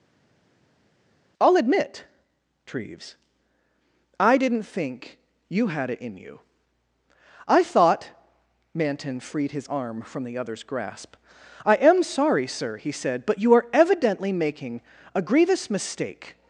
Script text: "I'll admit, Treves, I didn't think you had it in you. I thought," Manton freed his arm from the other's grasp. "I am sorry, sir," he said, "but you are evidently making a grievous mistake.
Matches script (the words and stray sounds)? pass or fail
pass